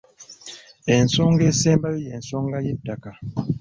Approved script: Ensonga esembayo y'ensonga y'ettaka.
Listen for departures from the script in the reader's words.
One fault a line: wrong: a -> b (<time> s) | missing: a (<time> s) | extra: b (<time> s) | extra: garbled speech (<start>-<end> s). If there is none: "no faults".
no faults